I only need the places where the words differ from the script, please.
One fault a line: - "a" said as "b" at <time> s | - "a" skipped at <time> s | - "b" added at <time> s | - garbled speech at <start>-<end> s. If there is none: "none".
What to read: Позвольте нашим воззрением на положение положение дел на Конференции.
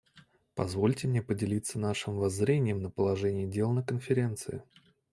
- "мне поделиться" added at 1.1 s
- "положение" skipped at 3.5 s